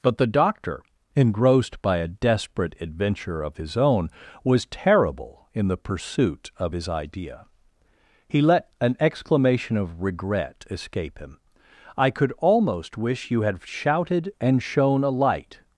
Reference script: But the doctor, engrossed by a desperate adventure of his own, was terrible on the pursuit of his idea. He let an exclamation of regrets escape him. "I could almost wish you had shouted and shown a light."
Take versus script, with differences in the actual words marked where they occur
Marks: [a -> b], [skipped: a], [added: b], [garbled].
But the doctor, engrossed by a desperate adventure of his own, was terrible [on -> in] the pursuit of his idea. He let an exclamation of [regrets -> regret] escape him. "I could almost wish you had shouted and shown a light."